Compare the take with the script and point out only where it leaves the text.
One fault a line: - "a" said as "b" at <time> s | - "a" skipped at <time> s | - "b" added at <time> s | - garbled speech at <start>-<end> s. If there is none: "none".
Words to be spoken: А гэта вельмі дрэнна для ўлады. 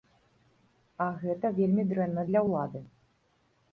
none